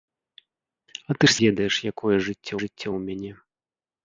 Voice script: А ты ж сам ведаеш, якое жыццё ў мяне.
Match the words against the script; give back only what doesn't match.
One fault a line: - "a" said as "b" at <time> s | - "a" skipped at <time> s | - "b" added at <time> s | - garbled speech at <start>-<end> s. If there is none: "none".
- "сам" skipped at 1.3 s
- "жыццё" added at 2.6 s